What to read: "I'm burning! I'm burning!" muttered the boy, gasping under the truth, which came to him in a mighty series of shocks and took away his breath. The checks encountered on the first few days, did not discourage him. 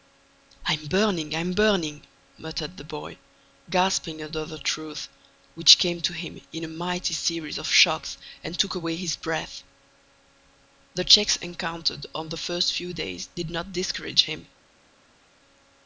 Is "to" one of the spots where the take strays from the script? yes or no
no